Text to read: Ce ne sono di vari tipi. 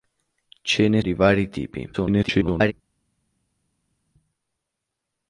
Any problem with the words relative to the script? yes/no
yes